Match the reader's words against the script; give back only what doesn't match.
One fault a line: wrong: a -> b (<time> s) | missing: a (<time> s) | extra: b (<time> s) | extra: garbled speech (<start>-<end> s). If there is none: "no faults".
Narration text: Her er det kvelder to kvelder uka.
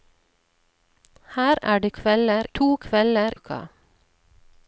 no faults